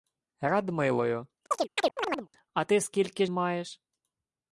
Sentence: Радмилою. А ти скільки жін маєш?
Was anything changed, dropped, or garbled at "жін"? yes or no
yes